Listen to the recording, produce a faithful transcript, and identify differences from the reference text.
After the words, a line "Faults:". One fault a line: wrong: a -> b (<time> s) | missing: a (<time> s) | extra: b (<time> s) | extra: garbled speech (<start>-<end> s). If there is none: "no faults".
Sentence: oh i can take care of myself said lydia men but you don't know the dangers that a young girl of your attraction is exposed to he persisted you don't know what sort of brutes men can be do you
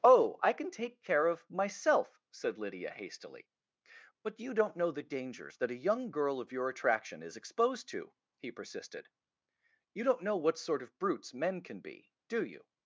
oh i can take care of myself said lydia hastily but you don't know the dangers that a young girl of your attraction is exposed to he persisted you don't know what sort of brutes men can be do you
Faults:
wrong: men -> hastily (2.9 s)